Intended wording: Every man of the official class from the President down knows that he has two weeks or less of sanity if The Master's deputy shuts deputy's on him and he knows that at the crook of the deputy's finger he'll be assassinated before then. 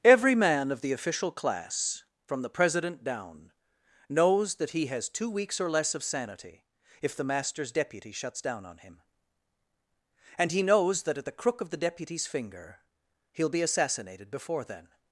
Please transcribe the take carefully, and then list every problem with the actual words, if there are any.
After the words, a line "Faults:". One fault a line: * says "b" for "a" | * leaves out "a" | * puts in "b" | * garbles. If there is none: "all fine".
Every man of the official class from the President down knows that he has two weeks or less of sanity if The Master's deputy shuts down on him and he knows that at the crook of the deputy's finger he'll be assassinated before then.
Faults:
* says "down" for "deputy's"